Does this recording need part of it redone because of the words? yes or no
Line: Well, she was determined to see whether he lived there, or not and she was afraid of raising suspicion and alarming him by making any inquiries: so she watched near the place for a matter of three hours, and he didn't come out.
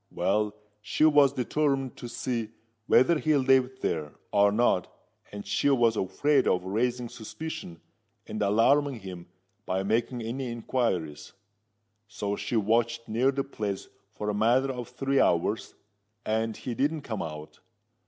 no